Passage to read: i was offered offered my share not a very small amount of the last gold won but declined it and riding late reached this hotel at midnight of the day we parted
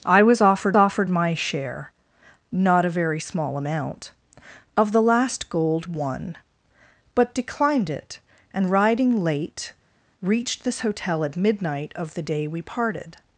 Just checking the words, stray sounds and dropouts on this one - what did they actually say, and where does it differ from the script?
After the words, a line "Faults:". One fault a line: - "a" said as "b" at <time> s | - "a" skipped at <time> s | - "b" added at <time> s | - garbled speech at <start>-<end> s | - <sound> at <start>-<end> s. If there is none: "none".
i was offered offered my share not a very small amount of the last gold won but declined it and riding late reached this hotel at midnight of the day we parted
Faults:
none